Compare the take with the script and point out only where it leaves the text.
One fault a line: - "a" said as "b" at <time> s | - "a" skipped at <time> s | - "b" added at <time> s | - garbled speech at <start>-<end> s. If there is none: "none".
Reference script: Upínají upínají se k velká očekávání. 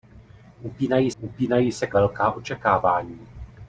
none